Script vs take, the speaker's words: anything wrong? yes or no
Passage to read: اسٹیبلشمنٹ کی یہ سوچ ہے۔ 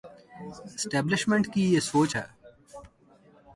no